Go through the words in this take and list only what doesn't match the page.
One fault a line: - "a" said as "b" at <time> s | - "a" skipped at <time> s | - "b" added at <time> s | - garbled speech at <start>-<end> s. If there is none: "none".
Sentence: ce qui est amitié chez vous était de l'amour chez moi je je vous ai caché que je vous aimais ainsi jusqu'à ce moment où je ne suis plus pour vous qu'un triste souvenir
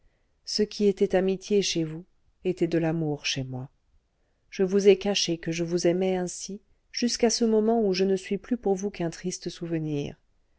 - "est" said as "était" at 0.9 s
- "je" skipped at 4.6 s